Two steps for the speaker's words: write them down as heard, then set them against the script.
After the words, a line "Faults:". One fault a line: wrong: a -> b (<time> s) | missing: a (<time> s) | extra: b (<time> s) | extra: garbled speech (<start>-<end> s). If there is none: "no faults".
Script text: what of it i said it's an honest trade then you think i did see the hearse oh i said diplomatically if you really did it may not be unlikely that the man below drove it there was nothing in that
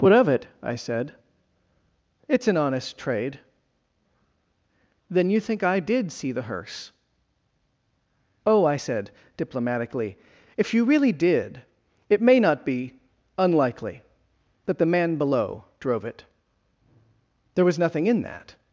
what of it i said it's an honest trade then you think i did see the hearse oh i said diplomatically if you really did it may not be unlikely that the man below drove it there was nothing in that
Faults:
no faults